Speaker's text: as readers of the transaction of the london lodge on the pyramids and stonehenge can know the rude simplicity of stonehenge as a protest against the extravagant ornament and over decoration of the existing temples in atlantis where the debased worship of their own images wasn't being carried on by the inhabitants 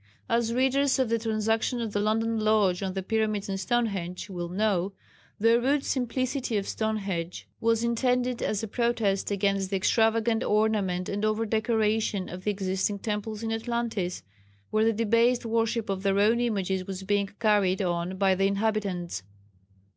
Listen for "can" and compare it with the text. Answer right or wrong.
wrong